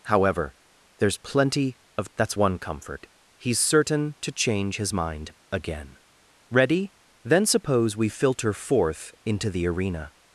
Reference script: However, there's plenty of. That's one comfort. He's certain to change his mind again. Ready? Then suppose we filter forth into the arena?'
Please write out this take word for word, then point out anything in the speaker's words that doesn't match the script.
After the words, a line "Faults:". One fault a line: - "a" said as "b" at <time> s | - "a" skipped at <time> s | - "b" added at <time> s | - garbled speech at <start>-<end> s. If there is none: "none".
However, there's plenty of. That's one comfort. He's certain to change his mind again. Ready? Then suppose we filter forth into the arena?'
Faults:
none